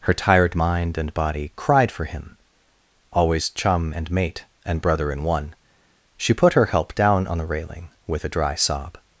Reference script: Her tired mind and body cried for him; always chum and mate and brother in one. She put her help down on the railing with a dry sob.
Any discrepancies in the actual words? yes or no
no